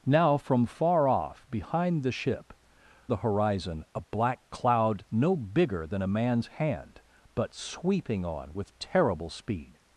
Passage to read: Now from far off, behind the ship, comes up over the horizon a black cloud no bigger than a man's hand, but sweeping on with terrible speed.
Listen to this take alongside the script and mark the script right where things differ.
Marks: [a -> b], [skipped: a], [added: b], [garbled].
Now from far off, behind the ship, [skipped: comes up over] the horizon a black cloud no bigger than a man's hand, but sweeping on with terrible speed.